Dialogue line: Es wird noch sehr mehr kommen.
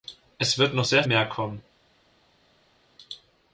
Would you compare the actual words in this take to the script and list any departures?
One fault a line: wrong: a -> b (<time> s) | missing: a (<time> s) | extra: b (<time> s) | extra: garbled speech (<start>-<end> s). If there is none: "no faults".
no faults